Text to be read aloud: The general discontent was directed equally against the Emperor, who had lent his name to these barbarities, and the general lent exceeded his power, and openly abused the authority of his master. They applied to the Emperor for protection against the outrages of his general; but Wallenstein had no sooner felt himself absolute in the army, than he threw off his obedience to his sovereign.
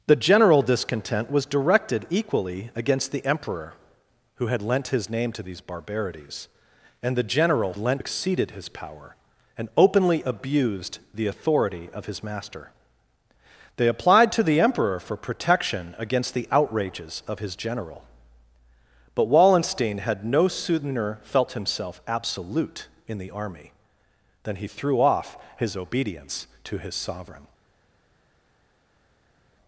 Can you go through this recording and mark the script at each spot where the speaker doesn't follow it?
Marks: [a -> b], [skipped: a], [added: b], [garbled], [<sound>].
The general discontent was directed equally against the Emperor, who had lent his name to these barbarities, and the general lent exceeded his power, and openly abused the authority of his master. They applied to the Emperor for protection against the outrages of his general; but Wallenstein had no sooner felt himself absolute in the army, than he threw off his obedience to his sovereign.